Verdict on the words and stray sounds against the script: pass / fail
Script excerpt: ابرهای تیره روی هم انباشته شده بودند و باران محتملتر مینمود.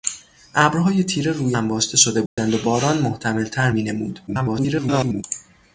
fail